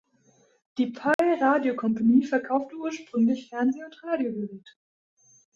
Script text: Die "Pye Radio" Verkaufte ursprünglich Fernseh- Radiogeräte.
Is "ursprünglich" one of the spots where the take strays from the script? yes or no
no